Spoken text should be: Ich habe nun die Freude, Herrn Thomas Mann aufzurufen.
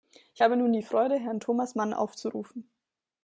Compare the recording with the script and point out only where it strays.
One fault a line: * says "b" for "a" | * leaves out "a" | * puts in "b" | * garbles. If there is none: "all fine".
all fine